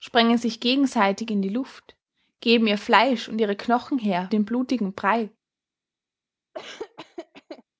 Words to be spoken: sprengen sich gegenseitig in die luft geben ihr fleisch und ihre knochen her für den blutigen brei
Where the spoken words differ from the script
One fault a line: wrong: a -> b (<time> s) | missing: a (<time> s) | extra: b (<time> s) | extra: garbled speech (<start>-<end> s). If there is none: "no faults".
missing: für (4.3 s)